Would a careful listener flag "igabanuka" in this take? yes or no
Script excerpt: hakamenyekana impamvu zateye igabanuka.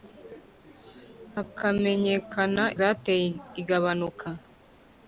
no